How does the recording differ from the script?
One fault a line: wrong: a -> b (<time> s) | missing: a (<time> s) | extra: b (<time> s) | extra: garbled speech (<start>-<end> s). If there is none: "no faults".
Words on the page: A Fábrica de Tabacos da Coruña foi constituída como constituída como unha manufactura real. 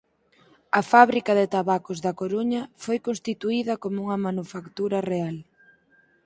missing: constituída como (4.0 s)